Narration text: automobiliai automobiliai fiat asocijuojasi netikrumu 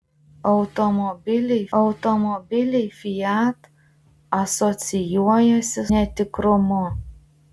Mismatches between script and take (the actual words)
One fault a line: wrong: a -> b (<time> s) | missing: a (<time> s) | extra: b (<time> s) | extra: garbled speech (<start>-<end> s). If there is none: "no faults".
no faults